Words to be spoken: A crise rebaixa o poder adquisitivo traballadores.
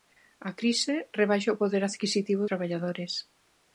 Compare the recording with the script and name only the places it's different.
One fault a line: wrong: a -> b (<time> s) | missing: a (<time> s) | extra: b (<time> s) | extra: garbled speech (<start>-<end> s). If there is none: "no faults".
no faults